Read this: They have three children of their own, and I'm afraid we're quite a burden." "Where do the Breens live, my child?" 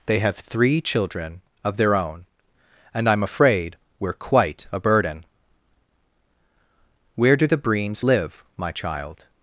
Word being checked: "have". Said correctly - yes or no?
yes